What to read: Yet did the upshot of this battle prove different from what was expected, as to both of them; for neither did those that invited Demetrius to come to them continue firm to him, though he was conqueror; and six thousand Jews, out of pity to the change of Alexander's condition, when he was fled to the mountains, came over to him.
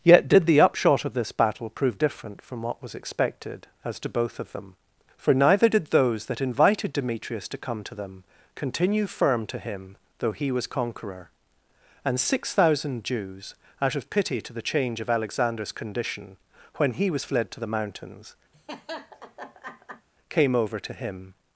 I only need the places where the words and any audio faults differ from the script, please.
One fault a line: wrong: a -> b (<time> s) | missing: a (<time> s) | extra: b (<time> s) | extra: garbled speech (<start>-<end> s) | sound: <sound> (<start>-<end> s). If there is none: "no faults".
sound: laugh (18.5-20.1 s)